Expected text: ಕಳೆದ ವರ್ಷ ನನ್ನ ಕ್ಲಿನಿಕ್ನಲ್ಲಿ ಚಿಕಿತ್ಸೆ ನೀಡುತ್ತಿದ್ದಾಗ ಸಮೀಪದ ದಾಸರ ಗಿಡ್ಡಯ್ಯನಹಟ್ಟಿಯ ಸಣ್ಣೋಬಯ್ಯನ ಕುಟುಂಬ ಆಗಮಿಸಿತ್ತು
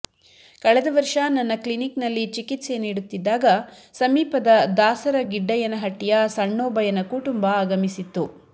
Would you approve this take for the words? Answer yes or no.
yes